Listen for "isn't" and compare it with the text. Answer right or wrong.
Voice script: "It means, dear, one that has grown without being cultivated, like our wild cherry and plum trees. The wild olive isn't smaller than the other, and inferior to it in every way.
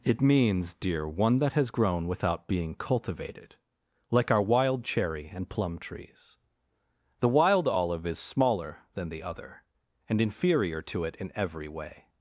wrong